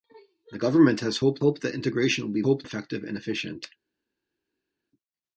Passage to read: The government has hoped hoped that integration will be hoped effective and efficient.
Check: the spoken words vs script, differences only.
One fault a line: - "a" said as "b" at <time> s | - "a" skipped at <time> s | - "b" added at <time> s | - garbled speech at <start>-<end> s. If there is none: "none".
none